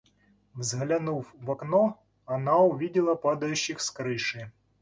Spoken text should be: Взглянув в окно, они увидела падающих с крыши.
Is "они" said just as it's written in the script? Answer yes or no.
no